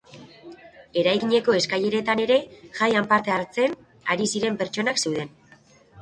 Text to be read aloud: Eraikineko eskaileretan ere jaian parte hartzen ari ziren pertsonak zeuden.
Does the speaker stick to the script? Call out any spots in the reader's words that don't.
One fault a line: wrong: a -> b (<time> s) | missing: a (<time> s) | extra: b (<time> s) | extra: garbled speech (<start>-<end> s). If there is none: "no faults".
no faults